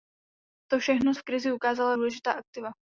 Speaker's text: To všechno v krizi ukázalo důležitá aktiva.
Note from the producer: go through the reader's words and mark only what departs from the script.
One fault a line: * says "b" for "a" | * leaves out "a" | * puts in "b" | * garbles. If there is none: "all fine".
all fine